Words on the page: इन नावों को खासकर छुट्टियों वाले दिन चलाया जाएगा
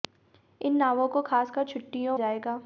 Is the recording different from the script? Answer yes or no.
yes